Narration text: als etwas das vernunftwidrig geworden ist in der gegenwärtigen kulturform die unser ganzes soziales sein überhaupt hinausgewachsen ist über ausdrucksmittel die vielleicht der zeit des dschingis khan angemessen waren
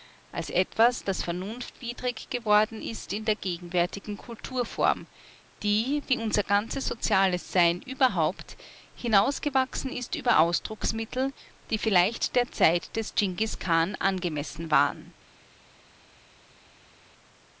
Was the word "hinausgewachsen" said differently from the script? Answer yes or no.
no